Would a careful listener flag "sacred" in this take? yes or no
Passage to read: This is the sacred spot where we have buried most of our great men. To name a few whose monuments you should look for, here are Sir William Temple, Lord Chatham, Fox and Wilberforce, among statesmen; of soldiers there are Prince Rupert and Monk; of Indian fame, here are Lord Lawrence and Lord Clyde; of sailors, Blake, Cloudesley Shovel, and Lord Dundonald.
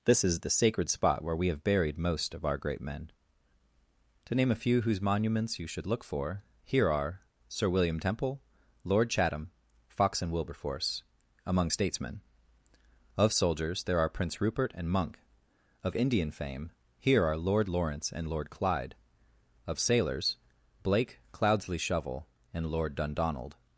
no